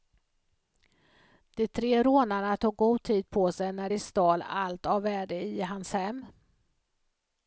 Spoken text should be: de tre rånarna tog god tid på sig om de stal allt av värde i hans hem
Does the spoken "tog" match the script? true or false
true